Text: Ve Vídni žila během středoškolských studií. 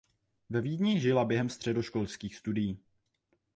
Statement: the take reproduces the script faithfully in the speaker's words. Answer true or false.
true